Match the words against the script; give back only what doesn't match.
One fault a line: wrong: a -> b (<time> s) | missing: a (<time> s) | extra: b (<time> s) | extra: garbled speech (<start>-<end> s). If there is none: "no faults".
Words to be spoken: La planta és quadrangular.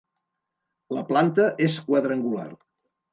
no faults